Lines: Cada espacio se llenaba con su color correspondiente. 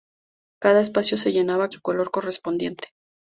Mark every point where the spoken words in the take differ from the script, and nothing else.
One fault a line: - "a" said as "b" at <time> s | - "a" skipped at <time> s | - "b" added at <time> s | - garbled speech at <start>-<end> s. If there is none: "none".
- "con" skipped at 1.7 s